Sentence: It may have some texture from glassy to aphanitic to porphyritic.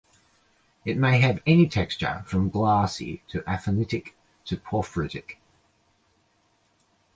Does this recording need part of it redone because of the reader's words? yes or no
yes